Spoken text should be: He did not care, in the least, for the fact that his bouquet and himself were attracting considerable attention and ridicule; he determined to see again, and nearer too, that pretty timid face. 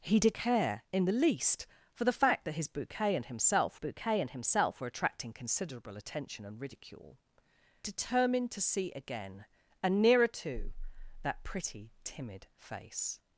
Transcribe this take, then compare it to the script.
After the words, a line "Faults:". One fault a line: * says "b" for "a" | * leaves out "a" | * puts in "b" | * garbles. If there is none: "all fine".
He did care, in the least, for the fact that his bouquet and himself bouquet and himself were attracting considerable attention and ridicule; determined to see again, and nearer too, that pretty timid face.
Faults:
* leaves out "not"
* puts in "bouquet and himself"
* leaves out "he"